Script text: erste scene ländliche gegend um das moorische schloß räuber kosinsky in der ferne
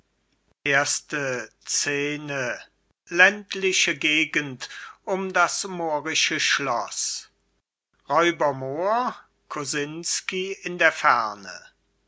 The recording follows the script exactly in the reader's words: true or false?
false